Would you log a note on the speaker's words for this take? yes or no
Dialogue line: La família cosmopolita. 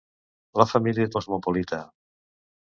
no